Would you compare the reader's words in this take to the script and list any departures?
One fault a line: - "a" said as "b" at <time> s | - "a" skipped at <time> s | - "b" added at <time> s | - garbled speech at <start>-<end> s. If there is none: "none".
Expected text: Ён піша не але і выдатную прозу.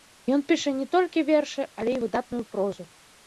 - "толькі вершы" added at 0.9 s